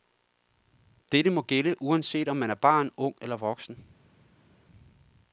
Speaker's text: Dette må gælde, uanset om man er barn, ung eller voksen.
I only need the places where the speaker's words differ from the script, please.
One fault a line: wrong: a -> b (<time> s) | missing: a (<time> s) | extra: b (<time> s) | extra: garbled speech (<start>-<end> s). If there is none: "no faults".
no faults